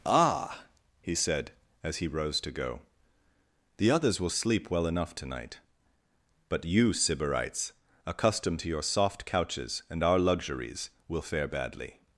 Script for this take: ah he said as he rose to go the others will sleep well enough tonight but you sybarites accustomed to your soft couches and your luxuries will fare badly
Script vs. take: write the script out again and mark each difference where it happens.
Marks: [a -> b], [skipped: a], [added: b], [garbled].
ah he said as he rose to go the others will sleep well enough tonight but you sybarites accustomed to your soft couches and [your -> our] luxuries will fare badly